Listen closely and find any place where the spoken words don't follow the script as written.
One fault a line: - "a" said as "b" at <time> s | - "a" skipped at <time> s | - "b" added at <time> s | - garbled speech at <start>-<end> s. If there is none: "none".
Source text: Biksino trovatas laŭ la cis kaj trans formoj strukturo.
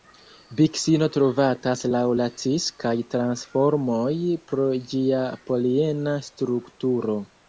- "pro ĝia poliena" added at 4.5 s